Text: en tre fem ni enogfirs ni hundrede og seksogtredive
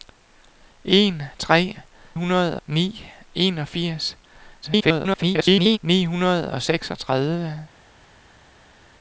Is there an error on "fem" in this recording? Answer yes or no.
yes